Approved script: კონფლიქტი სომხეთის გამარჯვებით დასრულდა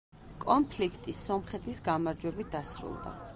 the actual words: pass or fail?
pass